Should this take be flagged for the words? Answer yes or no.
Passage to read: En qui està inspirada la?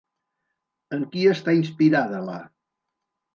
no